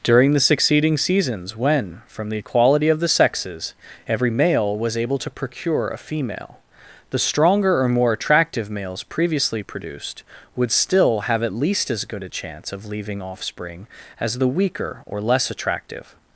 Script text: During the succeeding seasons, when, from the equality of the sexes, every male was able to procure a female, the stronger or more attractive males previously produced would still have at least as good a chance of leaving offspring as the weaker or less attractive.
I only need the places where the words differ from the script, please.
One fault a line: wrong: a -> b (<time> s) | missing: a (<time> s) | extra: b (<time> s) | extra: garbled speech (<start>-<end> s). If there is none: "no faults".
no faults